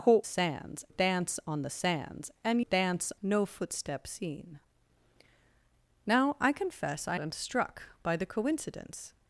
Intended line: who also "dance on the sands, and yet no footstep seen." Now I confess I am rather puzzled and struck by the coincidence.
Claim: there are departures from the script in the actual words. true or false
true